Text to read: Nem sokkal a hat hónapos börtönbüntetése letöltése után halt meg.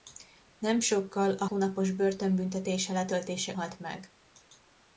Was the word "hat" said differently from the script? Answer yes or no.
yes